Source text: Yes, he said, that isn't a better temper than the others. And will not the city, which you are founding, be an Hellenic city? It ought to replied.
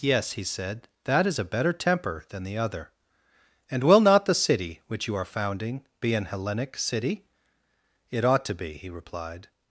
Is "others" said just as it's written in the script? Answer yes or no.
no